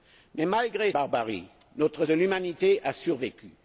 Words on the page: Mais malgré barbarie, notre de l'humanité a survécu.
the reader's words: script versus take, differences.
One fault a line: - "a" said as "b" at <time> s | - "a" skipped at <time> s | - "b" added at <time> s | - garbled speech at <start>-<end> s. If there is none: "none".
none